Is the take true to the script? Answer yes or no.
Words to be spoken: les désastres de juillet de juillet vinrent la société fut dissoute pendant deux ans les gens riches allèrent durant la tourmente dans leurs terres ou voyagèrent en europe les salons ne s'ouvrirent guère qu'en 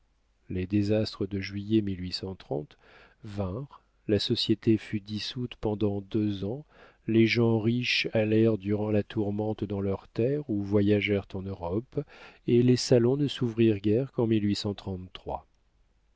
no